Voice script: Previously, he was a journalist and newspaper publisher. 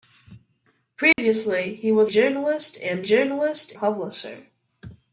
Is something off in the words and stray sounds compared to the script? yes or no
yes